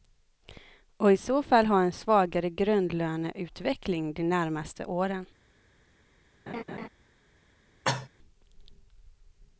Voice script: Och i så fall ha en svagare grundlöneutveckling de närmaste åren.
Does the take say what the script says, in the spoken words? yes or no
yes